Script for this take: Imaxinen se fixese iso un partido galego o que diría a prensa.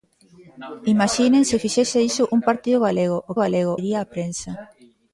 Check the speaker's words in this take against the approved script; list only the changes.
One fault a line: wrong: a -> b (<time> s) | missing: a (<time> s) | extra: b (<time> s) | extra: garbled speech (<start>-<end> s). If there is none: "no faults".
wrong: que -> galego (3.4 s)